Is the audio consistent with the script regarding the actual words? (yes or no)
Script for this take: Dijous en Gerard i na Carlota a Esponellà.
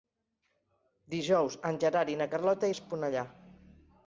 yes